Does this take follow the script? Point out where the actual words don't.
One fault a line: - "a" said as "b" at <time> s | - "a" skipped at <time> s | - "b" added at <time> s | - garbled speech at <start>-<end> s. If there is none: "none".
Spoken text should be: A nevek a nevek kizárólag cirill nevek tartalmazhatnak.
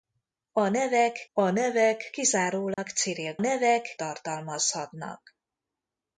none